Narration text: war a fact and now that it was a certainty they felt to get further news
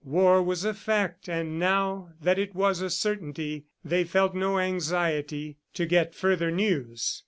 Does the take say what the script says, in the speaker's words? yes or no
no